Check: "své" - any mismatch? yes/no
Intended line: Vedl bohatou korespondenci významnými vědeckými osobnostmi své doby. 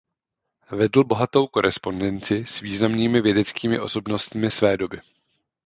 no